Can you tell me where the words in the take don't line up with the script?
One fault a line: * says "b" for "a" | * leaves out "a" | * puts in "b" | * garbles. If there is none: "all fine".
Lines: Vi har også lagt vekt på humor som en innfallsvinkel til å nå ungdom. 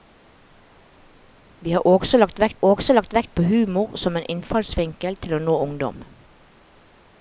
* puts in "også lagt vekt"